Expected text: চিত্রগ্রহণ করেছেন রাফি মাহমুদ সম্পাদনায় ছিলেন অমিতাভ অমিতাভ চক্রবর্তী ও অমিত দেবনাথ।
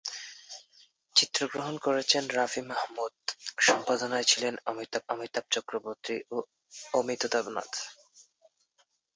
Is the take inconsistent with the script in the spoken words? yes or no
no